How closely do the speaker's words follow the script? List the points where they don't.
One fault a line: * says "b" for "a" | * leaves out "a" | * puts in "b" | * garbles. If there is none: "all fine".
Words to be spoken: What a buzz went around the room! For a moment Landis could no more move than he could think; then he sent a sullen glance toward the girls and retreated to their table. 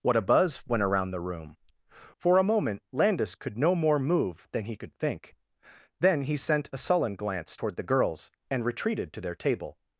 all fine